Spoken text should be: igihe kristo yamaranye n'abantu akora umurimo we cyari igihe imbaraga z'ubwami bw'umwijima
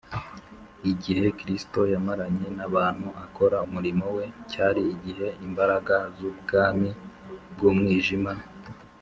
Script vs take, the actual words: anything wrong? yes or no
no